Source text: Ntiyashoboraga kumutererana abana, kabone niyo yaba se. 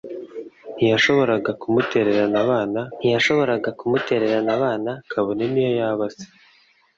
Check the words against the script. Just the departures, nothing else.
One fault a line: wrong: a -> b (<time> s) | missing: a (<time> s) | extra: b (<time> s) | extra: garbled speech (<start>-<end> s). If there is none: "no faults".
extra: ntiyashoboraga kumutererana abana (3.0 s)